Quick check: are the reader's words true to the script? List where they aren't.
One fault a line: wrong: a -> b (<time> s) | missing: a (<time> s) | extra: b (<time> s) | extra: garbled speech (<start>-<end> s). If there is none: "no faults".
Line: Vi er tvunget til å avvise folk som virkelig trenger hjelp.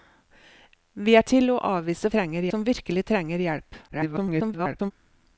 missing: tvunget (1.3 s)
wrong: folk -> trenger (2.2 s)
extra: garbled speech (3.9-4.9 s)